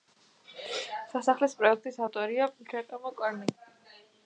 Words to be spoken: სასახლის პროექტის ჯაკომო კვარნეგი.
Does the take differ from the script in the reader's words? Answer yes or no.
yes